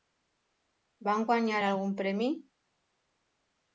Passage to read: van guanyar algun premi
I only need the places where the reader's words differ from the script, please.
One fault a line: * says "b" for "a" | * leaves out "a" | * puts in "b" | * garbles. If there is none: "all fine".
all fine